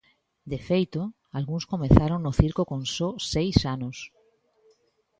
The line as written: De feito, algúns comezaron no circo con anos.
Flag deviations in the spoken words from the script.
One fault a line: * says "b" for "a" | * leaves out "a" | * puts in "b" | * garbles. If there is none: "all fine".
* puts in "só seis"